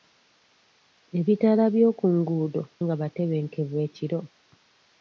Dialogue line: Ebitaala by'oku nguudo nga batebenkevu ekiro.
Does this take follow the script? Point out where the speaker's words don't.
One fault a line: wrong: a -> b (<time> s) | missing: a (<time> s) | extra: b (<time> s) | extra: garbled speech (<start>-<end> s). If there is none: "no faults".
no faults